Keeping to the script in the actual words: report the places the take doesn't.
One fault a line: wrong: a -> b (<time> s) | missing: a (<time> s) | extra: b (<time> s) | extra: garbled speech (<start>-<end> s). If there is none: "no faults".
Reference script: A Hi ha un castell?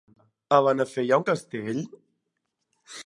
extra: Benafer (0.7 s)